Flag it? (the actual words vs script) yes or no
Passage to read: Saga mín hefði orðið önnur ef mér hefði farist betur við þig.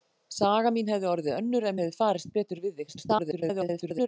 yes